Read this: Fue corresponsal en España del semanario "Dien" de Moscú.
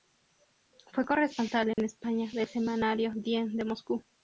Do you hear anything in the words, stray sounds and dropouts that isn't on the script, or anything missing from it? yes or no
yes